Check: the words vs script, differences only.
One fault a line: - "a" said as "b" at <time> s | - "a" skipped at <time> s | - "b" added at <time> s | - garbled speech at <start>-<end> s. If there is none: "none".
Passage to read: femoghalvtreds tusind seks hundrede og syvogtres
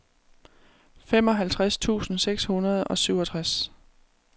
none